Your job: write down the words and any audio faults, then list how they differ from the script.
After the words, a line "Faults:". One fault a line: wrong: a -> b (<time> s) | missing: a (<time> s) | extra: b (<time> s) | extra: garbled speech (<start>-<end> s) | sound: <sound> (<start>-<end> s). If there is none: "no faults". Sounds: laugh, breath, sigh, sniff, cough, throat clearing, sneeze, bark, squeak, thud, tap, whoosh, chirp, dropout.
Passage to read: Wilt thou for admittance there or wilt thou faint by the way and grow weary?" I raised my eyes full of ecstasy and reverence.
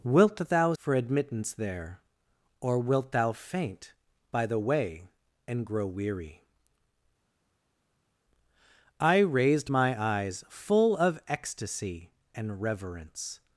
Wilt thou for admittance there or wilt thou faint by the way and grow weary?" I raised my eyes full of ecstasy and reverence.
Faults:
no faults